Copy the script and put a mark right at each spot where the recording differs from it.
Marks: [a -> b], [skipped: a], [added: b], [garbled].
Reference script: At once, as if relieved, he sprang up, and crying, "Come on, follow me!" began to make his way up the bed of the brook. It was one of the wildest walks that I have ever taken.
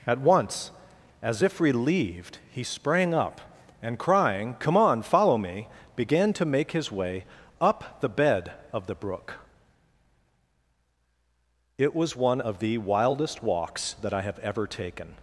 At once, as if relieved, he sprang up, and crying, "Come on, follow me!" began to make his way up the bed of the brook. It was one of the wildest walks that I have ever taken.